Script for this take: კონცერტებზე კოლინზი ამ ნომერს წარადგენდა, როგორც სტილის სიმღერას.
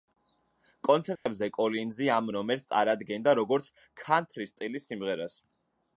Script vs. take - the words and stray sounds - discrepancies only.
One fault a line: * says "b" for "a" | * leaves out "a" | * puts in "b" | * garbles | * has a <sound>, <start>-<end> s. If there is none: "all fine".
* has a dropout, 1.2-1.3 s
* puts in "ქანთრის"